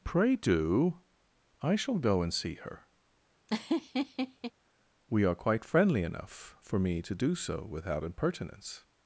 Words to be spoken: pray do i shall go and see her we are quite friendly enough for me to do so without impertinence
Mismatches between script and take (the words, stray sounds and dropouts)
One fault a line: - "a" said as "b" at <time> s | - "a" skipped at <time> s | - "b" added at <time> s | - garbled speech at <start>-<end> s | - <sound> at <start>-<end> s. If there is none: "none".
- laugh at 3.5-4.5 s